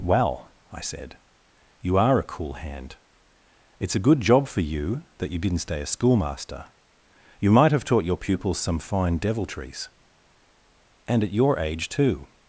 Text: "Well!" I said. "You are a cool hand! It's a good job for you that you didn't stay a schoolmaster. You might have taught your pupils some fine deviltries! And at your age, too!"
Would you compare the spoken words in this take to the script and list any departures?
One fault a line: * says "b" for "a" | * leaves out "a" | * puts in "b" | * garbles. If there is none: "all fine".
all fine